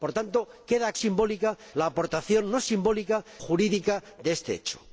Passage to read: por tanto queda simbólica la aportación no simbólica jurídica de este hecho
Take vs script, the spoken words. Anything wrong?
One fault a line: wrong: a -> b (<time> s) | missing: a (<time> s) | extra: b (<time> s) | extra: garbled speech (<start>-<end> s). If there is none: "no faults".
no faults